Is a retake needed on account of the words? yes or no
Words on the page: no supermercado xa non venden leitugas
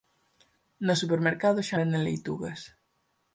yes